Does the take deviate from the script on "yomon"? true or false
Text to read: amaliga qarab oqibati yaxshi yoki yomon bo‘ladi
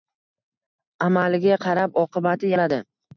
true